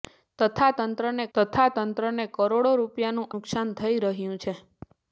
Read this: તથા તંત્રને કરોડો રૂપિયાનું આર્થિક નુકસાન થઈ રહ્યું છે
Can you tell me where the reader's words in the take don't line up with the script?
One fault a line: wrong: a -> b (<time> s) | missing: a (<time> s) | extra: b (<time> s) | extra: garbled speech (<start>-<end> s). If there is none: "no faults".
extra: તથા તંત્રને (1.4 s)
missing: આર્થિક (3.3 s)